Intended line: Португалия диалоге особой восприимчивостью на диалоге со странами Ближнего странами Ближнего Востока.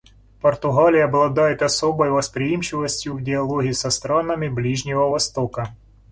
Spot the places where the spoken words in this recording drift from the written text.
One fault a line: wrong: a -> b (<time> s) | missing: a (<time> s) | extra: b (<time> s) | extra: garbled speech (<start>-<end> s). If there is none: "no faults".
wrong: диалоге -> обладает (1.1 s)
wrong: на -> в (3.1 s)
missing: странами Ближнего (5.1 s)